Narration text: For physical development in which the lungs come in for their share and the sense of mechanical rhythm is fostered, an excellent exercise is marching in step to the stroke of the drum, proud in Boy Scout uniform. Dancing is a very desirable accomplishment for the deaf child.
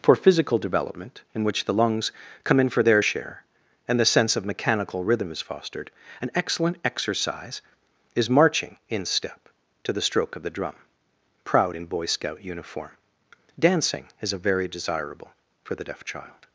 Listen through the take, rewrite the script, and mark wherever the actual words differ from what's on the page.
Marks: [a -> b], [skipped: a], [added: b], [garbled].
For physical development in which the lungs come in for their share and the sense of mechanical rhythm is fostered, an excellent exercise is marching in step to the stroke of the drum, proud in Boy Scout uniform. Dancing is a very desirable [skipped: accomplishment] for the deaf child.